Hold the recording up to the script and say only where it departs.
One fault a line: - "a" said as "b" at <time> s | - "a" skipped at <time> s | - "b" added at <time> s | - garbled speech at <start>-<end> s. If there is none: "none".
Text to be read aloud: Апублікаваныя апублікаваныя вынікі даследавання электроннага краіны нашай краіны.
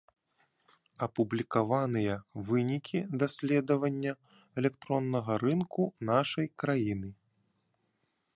- "апублікаваныя" skipped at 2.1 s
- "краіны" said as "рынку" at 5.5 s